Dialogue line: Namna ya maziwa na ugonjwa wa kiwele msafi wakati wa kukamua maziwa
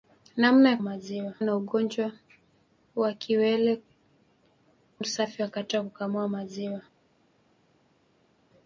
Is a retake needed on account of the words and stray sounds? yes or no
no